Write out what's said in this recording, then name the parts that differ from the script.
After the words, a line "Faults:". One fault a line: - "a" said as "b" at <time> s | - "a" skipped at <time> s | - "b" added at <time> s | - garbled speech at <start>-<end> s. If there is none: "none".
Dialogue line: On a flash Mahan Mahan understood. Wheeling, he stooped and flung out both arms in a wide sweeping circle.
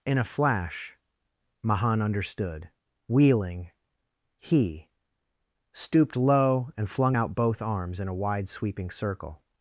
In a flash Mahan understood. Wheeling, he stooped low and flung out both arms in a wide sweeping circle.
Faults:
- "On" said as "In" at 0.0 s
- "Mahan" skipped at 2.0 s
- "low" added at 6.2 s